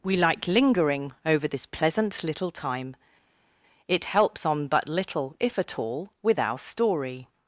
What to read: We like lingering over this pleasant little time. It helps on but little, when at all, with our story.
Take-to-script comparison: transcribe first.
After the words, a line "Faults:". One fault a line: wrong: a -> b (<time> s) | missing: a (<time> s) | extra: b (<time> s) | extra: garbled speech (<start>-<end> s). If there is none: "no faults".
We like lingering over this pleasant little time. It helps on but little, if at all, with our story.
Faults:
wrong: when -> if (5.4 s)